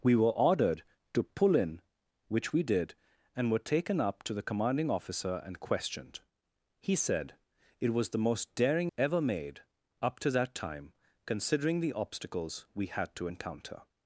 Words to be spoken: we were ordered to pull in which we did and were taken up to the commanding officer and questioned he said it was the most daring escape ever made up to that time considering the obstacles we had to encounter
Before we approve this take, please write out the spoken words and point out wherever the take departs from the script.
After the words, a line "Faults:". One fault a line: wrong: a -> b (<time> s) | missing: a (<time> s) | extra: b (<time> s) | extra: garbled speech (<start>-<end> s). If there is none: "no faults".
we were ordered to pull in which we did and were taken up to the commanding officer and questioned he said it was the most daring ever made up to that time considering the obstacles we had to encounter
Faults:
missing: escape (8.9 s)